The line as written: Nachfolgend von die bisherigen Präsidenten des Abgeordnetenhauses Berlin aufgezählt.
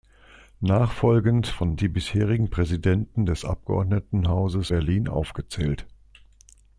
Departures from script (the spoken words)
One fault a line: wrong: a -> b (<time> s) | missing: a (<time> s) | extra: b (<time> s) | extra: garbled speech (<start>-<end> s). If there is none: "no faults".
no faults